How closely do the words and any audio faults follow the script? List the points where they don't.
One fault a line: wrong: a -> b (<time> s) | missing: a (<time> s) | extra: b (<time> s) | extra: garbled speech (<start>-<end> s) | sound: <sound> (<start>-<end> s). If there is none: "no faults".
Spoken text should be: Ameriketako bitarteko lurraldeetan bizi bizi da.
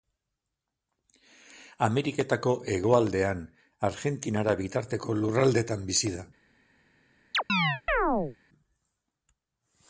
extra: hegoaldean Argentinara (2.8 s)
missing: bizi (6.1 s)
sound: chirp (7.3-8.4 s)